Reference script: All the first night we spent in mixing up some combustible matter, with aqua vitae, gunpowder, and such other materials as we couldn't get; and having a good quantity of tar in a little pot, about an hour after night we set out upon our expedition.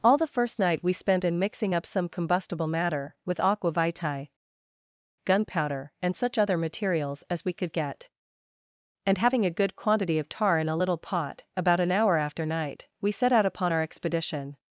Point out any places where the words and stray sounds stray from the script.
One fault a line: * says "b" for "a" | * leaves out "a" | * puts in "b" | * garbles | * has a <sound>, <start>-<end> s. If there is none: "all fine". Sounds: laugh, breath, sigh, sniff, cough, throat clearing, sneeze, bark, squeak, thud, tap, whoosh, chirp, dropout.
* says "could" for "couldn't"